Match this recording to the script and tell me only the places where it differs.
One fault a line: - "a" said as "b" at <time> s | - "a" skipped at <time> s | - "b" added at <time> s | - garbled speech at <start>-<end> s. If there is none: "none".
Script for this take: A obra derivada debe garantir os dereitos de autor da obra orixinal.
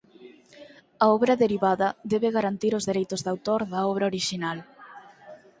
none